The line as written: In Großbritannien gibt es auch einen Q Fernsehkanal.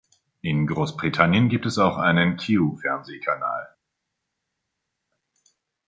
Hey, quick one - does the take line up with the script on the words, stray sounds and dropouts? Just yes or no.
yes